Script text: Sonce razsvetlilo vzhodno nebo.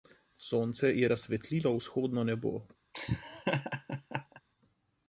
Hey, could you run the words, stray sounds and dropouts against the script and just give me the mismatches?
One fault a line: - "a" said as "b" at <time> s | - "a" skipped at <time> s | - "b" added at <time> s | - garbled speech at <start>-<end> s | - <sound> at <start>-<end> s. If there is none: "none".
- "je" added at 0.9 s
- laugh at 2.9-4.4 s